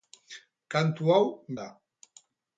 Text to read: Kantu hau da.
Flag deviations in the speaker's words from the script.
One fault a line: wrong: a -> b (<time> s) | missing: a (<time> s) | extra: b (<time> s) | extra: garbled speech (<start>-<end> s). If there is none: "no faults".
no faults